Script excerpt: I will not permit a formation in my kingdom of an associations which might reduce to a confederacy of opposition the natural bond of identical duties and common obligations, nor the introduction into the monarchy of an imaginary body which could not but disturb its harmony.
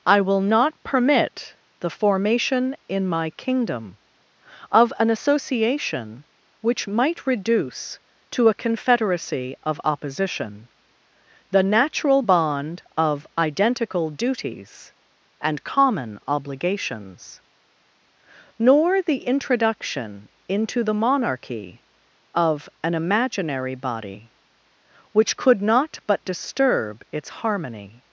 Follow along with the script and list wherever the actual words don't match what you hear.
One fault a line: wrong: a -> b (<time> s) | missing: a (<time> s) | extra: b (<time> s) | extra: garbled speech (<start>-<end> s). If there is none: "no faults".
wrong: a -> the (1.8 s)
wrong: associations -> association (5.1 s)